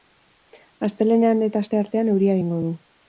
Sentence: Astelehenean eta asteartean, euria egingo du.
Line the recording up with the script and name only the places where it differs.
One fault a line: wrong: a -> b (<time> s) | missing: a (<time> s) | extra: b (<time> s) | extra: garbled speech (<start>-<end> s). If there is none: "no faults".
no faults